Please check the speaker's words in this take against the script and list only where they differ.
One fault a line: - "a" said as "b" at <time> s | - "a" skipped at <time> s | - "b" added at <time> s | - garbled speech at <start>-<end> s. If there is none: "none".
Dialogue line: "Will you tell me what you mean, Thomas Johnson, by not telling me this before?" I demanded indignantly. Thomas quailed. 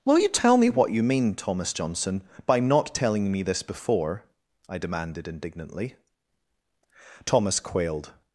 none